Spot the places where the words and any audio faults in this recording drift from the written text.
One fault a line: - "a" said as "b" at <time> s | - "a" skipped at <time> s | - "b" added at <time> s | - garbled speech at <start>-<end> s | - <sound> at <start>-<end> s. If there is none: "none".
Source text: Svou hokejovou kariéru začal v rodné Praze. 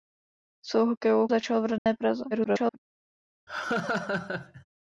- "kariéru" skipped at 1.3 s
- dropout at 1.8-1.9 s
- garbled speech at 2.3-2.8 s
- laugh at 3.5-4.6 s